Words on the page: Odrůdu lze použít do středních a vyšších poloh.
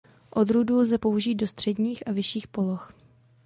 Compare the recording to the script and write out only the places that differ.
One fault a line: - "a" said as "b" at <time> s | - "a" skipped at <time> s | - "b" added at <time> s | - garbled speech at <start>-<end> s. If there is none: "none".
none